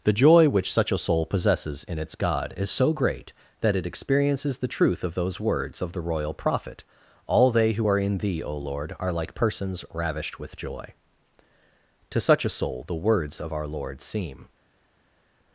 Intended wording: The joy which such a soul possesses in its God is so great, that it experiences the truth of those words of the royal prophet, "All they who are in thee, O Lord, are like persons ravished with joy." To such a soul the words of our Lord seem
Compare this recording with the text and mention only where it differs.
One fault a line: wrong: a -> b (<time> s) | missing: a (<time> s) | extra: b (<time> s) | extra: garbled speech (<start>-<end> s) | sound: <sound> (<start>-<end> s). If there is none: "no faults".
no faults